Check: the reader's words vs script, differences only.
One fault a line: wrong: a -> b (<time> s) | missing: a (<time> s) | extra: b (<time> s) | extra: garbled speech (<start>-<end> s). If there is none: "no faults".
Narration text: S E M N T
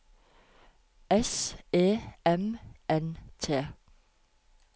no faults